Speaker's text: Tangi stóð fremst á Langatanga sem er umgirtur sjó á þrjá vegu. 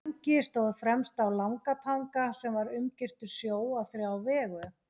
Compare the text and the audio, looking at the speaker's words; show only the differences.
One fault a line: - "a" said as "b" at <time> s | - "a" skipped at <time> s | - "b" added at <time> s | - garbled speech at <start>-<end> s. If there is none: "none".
- "er" said as "var" at 2.6 s